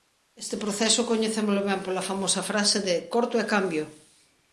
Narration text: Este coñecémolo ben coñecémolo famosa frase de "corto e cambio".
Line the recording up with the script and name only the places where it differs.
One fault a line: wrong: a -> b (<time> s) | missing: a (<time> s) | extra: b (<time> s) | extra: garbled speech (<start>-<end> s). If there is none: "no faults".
extra: proceso (0.6 s)
wrong: coñecémolo -> pola (1.9 s)